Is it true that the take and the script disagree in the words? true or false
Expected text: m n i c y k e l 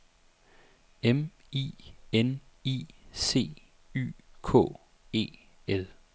true